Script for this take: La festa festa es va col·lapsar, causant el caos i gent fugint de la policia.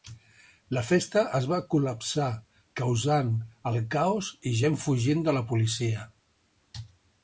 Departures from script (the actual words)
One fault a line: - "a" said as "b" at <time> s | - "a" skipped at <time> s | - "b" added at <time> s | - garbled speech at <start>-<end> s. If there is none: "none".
- "festa" skipped at 1.2 s